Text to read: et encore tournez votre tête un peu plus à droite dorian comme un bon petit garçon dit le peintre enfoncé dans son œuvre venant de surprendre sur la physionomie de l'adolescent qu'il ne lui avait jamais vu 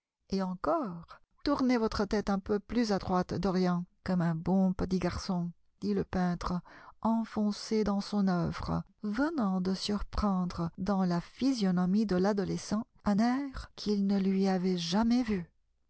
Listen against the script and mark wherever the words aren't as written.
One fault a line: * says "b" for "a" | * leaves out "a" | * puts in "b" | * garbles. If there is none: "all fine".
* says "dans" for "sur"
* puts in "un air"